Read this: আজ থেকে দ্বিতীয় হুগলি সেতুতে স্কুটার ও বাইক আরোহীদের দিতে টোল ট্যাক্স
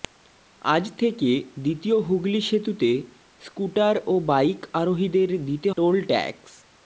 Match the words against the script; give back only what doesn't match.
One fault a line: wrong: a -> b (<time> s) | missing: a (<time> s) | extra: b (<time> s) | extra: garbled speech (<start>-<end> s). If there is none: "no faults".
no faults